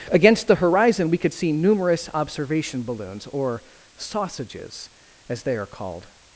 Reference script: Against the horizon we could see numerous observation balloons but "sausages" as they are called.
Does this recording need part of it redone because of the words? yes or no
yes